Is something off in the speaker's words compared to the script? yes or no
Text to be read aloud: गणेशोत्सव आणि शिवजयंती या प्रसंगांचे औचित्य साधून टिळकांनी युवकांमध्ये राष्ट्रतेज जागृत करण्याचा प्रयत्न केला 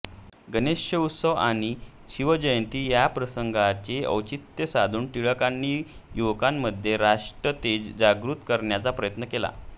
no